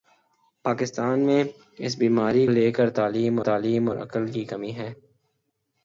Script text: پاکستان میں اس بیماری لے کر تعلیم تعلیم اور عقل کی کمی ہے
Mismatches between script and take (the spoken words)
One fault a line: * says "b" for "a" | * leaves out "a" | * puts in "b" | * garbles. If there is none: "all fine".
all fine